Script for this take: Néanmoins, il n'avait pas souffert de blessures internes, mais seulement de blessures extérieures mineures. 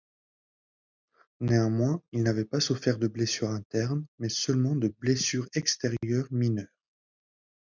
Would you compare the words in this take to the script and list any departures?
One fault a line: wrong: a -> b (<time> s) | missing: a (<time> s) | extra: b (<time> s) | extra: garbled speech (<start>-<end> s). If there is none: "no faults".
no faults